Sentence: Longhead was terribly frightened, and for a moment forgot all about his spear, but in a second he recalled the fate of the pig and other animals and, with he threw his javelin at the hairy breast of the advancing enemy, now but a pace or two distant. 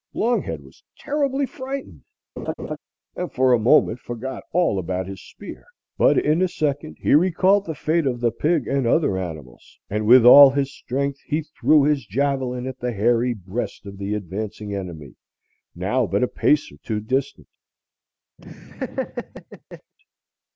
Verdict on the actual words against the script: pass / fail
fail